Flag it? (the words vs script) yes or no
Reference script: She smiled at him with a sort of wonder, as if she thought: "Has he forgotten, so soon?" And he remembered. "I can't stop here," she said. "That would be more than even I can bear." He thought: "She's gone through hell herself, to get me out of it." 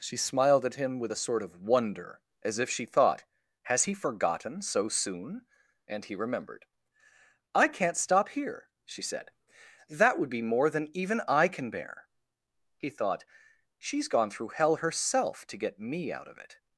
no